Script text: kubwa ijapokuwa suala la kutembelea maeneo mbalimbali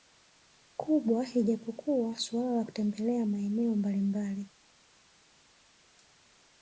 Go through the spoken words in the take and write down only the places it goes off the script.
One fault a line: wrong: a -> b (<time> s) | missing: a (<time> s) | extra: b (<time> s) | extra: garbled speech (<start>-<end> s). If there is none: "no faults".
no faults